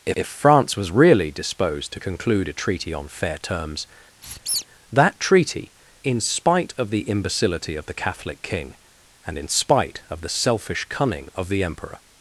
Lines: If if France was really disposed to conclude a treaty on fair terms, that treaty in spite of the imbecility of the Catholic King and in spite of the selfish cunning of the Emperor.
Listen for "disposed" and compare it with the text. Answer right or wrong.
right